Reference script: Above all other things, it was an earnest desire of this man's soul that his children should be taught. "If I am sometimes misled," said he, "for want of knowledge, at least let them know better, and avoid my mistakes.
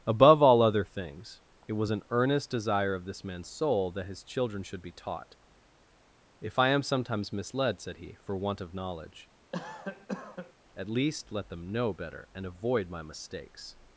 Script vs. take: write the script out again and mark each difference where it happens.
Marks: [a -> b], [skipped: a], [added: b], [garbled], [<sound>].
Above all other things, it was an earnest desire of this man's soul that his children should be taught. "If I am sometimes misled," said he, "for want of knowledge, [cough] at least let them know better, and avoid my mistakes.